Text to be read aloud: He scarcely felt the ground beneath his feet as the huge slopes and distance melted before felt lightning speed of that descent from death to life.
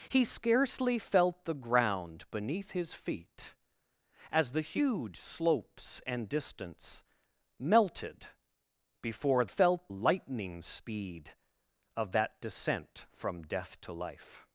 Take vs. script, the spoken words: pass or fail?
pass